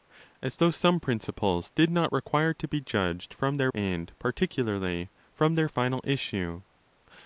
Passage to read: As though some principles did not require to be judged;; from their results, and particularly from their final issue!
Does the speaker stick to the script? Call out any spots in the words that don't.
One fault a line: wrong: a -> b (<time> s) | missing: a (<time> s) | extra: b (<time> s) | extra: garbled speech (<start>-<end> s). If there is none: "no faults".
missing: results (3.7 s)